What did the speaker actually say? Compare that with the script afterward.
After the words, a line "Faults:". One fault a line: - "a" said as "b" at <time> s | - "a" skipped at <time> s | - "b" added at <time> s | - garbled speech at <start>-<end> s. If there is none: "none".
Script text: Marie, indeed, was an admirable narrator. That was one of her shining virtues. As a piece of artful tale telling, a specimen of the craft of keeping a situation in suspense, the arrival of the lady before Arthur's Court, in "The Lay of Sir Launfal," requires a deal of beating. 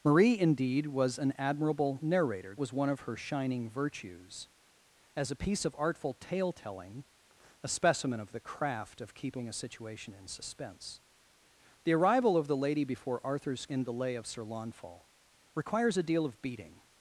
Marie, indeed, was an admirable narrator. Was one of her shining virtues. As a piece of artful tale telling, a specimen of the craft of keeping a situation in suspense, the arrival of the lady before Arthur's In "The Lay of Sir Launfal," requires a deal of beating.
Faults:
- "That" skipped at 2.5 s
- "Court" skipped at 13.7 s